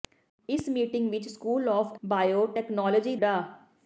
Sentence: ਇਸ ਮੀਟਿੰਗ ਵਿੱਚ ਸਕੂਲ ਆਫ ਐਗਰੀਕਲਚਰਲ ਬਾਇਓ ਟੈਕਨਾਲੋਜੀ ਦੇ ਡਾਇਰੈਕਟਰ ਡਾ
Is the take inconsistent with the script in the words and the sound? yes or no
yes